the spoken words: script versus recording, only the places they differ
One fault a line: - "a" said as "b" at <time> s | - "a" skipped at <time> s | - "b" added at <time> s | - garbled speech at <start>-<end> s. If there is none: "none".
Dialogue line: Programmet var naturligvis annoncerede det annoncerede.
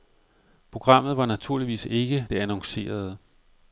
- "annoncerede" said as "ikke" at 1.9 s